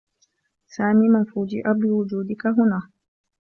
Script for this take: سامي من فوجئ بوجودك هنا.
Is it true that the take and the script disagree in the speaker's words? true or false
false